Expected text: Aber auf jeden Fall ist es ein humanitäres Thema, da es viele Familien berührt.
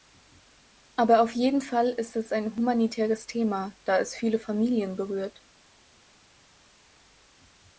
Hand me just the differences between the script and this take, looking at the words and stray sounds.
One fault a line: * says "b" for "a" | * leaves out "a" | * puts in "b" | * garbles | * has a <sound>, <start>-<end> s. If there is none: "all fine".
all fine